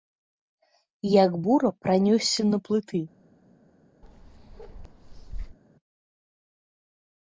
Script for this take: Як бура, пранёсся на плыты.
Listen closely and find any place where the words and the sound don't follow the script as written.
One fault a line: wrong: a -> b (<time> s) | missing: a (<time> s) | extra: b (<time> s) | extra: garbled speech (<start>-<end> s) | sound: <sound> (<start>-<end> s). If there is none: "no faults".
sound: bark (4.0-5.6 s)